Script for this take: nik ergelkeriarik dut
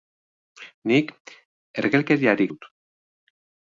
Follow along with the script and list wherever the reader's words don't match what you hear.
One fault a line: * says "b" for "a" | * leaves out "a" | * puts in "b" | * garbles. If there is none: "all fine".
all fine